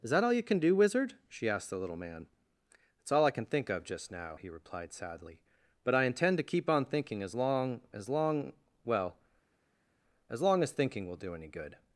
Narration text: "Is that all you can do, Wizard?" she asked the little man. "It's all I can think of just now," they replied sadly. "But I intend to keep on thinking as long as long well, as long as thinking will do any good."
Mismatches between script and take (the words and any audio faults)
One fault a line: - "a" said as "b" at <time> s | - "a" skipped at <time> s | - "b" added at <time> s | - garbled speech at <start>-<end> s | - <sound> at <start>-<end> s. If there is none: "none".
- "they" said as "he" at 4.3 s